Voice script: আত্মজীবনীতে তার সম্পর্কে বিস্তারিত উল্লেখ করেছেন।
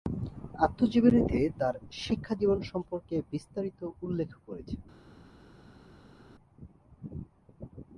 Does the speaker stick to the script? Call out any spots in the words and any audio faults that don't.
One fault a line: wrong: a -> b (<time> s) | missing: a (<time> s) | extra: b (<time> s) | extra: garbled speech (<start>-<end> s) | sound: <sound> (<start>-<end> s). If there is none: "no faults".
extra: শিক্ষাজীবন (2.0 s)